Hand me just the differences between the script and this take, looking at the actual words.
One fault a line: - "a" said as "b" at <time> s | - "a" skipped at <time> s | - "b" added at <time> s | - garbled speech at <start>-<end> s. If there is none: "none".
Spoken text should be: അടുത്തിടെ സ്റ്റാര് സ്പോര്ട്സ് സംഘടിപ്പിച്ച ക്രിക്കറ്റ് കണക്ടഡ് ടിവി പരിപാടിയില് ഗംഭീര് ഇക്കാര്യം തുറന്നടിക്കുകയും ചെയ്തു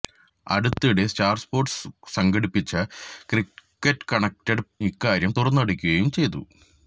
- "ടിവി പരിപാടിയില് ഗംഭീര്" skipped at 4.7 s